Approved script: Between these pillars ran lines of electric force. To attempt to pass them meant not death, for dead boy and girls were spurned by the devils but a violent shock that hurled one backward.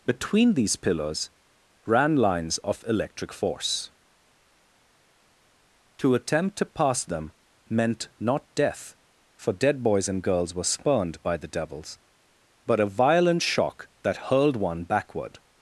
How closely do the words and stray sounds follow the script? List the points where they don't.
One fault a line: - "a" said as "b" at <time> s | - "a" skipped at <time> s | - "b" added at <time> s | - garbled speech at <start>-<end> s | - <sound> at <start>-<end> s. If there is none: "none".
- "boy" said as "boys" at 9.8 s